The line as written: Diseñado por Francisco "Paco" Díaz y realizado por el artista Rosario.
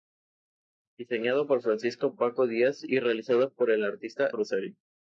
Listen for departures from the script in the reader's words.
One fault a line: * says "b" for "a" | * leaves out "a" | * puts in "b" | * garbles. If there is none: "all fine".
all fine